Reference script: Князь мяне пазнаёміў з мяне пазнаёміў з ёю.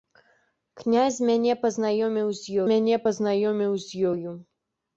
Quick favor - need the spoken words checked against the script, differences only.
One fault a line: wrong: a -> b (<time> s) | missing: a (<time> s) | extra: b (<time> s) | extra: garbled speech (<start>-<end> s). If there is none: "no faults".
no faults